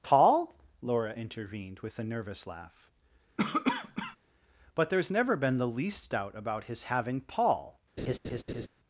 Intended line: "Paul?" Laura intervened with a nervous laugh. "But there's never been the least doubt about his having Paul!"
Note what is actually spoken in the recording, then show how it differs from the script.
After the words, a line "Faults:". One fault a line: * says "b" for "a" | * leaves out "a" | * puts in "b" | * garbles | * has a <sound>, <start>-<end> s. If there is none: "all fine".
"Paul?" Laura intervened with a nervous laugh. "But there's never been the least doubt about his having Paul!"
Faults:
* has a cough, 3.4-4.2 s
* has a laugh, 8.0-8.7 s